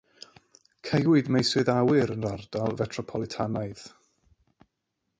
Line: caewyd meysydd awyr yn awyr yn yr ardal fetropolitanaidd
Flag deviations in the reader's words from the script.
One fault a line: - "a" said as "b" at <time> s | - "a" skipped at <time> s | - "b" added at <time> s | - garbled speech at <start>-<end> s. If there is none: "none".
- "awyr yn" skipped at 2.3 s